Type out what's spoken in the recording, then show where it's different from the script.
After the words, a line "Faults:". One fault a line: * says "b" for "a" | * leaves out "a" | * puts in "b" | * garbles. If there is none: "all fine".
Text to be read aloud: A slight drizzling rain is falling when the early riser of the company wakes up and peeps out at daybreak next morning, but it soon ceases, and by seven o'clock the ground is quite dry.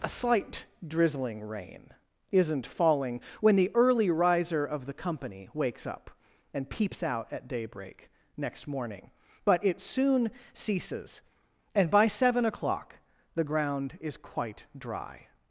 A slight drizzling rain isn't falling when the early riser of the company wakes up and peeps out at daybreak next morning, but it soon ceases, and by seven o'clock the ground is quite dry.
Faults:
* says "isn't" for "is"